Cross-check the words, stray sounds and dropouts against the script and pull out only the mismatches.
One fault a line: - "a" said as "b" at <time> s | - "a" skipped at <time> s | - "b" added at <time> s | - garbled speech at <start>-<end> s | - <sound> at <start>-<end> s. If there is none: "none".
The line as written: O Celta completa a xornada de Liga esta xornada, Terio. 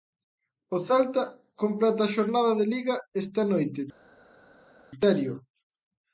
- "xornada" said as "noite" at 3.5 s